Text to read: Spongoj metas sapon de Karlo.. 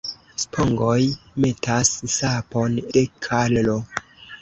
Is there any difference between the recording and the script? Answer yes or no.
no